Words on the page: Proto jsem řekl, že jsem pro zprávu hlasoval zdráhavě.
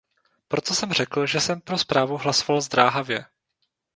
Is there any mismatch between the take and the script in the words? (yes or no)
no